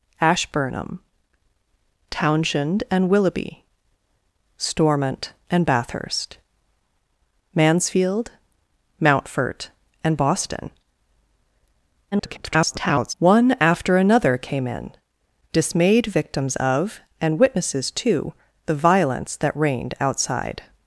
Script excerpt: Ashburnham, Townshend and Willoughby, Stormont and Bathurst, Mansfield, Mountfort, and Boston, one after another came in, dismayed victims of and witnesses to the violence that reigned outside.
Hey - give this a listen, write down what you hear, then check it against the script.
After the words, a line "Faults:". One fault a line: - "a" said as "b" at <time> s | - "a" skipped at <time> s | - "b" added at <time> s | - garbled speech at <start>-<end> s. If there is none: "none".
Ashburnham, Townshend and Willoughby, Stormont and Bathurst, Mansfield, Mountfort, and Boston, [garbled] one after another came in, dismayed victims of and witnesses to the violence that reigned outside.
Faults:
- garbled speech at 12.1-13.1 s